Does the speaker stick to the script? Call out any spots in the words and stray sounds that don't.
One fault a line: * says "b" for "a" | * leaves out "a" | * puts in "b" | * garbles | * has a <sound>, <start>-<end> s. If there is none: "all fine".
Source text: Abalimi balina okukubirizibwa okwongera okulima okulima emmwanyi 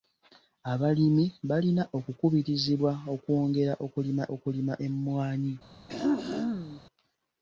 * has a throat clearing, 5.9-6.8 s